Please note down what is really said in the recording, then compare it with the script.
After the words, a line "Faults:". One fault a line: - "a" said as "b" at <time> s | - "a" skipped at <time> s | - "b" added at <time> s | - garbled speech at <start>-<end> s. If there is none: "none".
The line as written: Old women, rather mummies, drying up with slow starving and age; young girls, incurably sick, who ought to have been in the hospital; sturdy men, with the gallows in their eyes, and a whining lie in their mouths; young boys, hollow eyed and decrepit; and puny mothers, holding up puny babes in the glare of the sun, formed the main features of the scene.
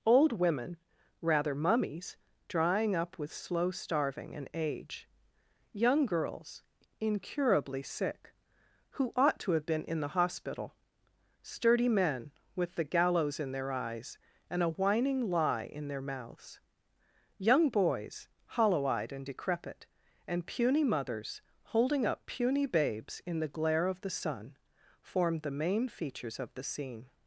Old women, rather mummies, drying up with slow starving and age; young girls, incurably sick, who ought to have been in the hospital; sturdy men, with the gallows in their eyes, and a whining lie in their mouths; young boys, hollow eyed and decrepit; and puny mothers, holding up puny babes in the glare of the sun, formed the main features of the scene.
Faults:
none